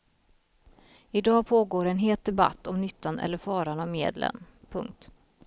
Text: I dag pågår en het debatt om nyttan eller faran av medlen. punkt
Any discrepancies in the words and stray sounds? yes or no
no